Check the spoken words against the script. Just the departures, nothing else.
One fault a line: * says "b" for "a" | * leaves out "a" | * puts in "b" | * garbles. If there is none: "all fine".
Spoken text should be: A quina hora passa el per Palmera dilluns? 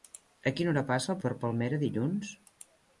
all fine